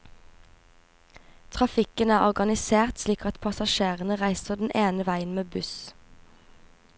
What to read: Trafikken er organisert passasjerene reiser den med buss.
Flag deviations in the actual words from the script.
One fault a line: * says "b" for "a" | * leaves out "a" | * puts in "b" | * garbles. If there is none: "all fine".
* puts in "slik at"
* puts in "ene veien"